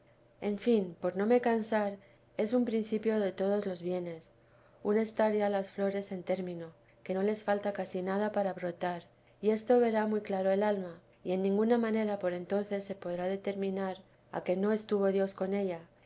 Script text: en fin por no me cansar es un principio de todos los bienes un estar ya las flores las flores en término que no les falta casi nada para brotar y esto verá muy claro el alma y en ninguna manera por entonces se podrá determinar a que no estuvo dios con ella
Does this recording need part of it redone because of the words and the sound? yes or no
yes